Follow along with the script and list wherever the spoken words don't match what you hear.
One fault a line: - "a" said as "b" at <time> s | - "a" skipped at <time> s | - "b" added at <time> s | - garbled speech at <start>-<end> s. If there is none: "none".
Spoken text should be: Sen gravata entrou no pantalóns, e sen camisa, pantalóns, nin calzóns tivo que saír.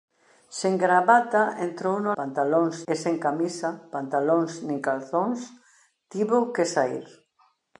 none